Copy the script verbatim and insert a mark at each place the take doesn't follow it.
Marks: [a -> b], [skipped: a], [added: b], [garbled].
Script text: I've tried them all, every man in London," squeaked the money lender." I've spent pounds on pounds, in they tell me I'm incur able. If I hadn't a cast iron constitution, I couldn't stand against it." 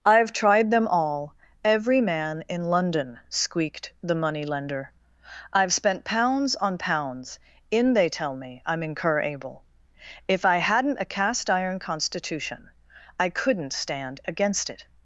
I've tried them all, every man in London," squeaked the money lender." I've spent pounds on pounds, in they tell me I'm incur able. If I hadn't a cast iron constitution, I couldn't stand against it."